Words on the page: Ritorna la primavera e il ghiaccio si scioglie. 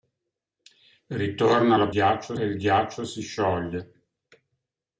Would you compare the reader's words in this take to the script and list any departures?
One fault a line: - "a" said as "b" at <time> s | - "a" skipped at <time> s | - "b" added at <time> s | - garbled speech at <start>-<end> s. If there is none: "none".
- "primavera" said as "ghiaccio" at 1.9 s